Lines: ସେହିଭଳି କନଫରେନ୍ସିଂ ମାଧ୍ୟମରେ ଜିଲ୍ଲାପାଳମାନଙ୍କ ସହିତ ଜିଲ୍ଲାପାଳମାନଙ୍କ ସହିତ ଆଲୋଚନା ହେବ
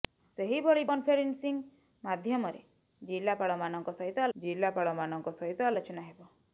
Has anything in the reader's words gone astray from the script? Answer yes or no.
no